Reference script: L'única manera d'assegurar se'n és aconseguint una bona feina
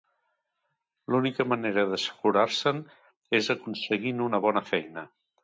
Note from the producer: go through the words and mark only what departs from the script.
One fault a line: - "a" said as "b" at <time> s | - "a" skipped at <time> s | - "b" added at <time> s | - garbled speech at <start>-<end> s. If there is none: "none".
none